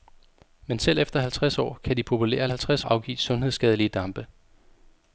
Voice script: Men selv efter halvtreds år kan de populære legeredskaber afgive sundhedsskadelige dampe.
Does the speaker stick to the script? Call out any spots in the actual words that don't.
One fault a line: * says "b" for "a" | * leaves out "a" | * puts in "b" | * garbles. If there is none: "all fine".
* says "halvtreds" for "legeredskaber"